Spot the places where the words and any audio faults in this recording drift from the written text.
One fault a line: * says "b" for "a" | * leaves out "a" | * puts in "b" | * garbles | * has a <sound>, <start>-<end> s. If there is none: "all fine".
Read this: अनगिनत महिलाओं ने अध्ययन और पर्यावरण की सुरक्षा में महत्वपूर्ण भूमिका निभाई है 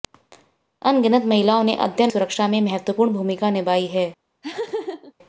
* leaves out "और पर्यावरण की"
* has a laugh, 4.4-5.1 s